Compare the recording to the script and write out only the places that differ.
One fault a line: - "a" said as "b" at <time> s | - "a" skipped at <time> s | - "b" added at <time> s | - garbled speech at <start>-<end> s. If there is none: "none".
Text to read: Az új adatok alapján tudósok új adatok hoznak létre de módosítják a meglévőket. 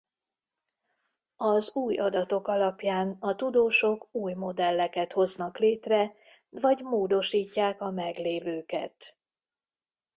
- "a" added at 3.2 s
- "adatok" said as "modelleket" at 4.3 s
- "de" said as "vagy" at 6.5 s